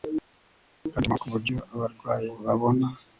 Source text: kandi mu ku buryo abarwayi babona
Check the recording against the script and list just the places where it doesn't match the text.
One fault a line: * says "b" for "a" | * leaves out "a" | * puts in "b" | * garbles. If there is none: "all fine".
all fine